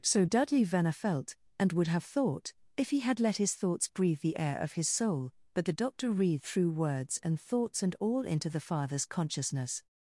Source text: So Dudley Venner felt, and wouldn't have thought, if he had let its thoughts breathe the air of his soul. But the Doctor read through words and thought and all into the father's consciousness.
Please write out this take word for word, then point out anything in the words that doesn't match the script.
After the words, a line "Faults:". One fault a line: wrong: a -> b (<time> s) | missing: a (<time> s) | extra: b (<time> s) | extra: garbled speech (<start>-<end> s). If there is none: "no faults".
So Dudley Venner felt, and would have thought, if he had let his thoughts breathe the air of his soul. But the Doctor read through words and thoughts and all into the father's consciousness.
Faults:
wrong: wouldn't -> would (1.7 s)
wrong: its -> his (3.4 s)
wrong: thought -> thoughts (7.4 s)